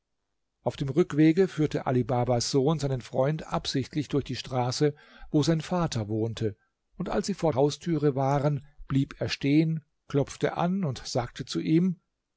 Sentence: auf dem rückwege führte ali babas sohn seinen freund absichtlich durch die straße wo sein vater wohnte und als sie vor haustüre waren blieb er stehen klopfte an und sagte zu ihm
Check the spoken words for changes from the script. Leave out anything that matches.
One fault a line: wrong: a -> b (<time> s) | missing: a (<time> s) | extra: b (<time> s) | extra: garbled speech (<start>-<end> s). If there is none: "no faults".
no faults